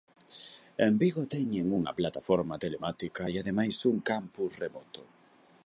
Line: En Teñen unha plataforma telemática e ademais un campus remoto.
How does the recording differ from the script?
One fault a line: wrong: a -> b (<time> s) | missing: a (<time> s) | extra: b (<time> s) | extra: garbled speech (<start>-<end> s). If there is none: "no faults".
extra: Vigo (1.0 s)